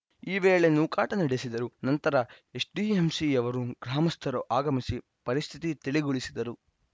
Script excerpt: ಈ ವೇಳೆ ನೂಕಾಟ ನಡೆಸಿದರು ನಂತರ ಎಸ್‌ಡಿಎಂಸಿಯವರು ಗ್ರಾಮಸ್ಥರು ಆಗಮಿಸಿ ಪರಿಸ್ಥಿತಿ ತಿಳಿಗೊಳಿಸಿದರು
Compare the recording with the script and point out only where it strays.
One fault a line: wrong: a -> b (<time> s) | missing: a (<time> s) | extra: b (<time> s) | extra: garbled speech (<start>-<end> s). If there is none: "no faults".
no faults